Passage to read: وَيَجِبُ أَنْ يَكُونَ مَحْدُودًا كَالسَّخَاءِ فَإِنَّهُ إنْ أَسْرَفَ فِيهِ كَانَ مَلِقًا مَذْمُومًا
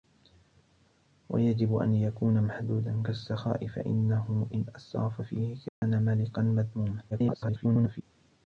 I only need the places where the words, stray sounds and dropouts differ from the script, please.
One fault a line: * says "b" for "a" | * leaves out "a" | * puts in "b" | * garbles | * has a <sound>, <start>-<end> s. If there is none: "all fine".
* has a dropout, 5.7-5.8 s
* garbles